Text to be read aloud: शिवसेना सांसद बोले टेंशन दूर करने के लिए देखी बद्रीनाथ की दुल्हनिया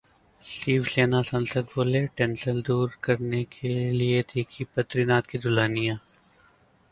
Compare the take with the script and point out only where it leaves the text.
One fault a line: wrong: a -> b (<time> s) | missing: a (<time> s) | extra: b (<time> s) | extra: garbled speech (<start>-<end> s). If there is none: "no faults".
no faults